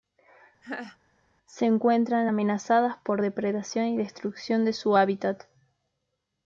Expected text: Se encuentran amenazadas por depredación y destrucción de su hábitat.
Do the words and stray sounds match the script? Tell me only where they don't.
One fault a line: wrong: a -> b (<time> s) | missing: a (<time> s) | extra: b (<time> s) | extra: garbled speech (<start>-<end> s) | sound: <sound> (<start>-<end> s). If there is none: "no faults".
sound: laugh (0.6-1.0 s)